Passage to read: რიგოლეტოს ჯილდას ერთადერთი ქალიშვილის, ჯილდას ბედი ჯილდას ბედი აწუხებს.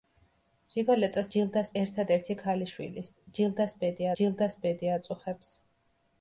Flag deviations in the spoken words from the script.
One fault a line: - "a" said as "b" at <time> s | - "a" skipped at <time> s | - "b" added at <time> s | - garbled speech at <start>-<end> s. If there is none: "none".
none